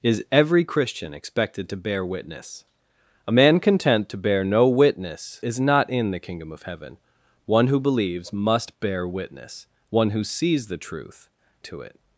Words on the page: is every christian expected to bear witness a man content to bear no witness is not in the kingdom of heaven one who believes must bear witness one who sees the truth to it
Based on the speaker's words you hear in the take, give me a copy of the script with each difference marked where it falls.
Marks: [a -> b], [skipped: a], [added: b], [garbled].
is every christian expected to bear witness a man content to bear no witness is not in the kingdom of heaven one who believes must bear witness one who sees the truth to it